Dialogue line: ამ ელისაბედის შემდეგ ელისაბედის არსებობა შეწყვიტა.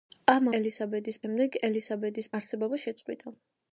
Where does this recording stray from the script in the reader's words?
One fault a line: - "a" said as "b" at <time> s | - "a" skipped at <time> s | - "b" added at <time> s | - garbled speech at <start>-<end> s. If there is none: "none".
none